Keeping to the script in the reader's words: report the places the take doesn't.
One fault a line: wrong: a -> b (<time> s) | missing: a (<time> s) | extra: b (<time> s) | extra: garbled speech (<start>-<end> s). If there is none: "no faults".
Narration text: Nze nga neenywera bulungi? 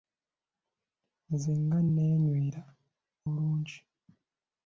no faults